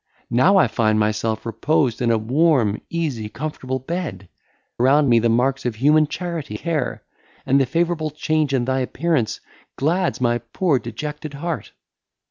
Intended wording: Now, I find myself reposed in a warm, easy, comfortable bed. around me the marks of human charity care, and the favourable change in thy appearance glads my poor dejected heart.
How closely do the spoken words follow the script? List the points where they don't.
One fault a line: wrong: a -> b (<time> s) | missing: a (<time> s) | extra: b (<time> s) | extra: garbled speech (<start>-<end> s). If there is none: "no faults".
no faults